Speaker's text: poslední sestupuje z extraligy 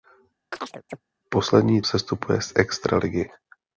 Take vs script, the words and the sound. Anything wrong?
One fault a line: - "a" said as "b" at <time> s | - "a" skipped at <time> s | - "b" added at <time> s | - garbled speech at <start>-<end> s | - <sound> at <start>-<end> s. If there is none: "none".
- chirp at 0.5-1.0 s